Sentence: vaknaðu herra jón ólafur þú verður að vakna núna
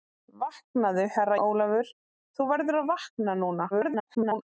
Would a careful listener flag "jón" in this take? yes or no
yes